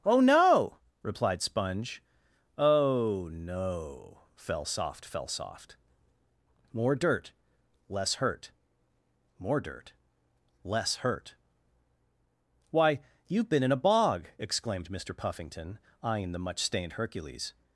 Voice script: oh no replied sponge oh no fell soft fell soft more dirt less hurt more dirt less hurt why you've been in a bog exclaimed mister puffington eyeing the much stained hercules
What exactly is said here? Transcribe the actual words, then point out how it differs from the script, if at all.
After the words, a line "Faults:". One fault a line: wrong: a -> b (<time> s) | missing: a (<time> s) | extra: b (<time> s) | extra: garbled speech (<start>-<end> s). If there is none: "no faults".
oh no replied sponge oh no fell soft fell soft more dirt less hurt more dirt less hurt why you've been in a bog exclaimed mister puffington eyeing the much stained hercules
Faults:
no faults